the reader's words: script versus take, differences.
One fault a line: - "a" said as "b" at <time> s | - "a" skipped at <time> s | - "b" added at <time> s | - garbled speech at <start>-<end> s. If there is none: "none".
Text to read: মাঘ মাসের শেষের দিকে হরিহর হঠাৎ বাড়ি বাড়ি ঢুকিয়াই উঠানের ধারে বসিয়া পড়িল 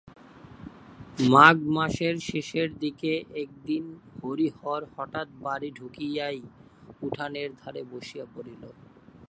- "একদিন" added at 3.4 s
- "বাড়ি" skipped at 5.7 s